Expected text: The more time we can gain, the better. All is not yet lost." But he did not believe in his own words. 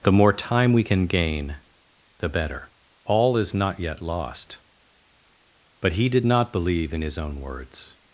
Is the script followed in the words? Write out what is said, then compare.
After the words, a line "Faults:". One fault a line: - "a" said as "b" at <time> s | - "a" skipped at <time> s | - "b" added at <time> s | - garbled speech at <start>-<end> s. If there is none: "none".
The more time we can gain, the better. All is not yet lost." But he did not believe in his own words.
Faults:
none